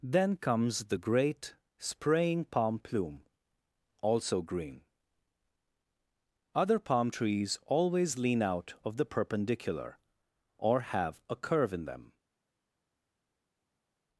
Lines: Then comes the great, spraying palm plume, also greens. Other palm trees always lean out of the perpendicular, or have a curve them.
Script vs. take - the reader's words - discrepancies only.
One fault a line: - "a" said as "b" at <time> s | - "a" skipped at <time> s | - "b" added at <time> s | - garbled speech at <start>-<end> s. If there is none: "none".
- "greens" said as "green" at 4.4 s
- "in" added at 11.7 s